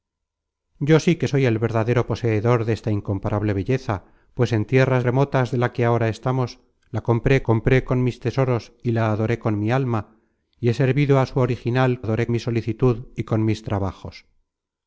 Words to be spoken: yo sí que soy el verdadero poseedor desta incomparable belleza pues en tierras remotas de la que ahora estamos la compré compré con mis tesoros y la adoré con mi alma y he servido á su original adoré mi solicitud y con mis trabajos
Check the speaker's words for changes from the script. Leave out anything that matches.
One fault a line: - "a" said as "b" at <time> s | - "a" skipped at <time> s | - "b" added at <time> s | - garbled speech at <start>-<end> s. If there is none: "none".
none